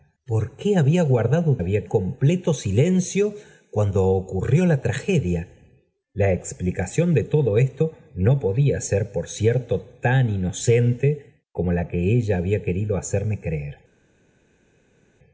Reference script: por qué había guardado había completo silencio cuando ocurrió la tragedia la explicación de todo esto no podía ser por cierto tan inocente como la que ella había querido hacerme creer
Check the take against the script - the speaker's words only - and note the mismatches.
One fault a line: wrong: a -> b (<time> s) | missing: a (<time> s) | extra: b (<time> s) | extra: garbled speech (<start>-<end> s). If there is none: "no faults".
no faults